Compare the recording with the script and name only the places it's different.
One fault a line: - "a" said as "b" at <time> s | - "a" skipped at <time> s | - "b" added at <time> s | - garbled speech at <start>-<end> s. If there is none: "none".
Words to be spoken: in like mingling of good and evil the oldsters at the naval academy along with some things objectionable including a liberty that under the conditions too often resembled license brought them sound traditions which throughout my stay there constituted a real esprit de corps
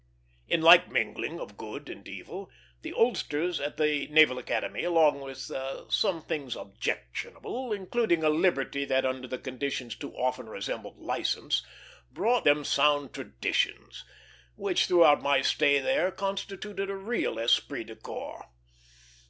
none